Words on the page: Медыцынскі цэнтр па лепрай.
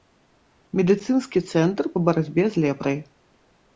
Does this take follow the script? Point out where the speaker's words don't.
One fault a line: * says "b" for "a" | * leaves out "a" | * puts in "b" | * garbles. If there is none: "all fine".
* puts in "барацьбе з"